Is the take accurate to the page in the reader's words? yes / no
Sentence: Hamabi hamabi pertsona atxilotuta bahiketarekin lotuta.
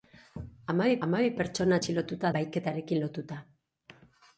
yes